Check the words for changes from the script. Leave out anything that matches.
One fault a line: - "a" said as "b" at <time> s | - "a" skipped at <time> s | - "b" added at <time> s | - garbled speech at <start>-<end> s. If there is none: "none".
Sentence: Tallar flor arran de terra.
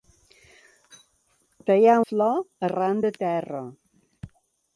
none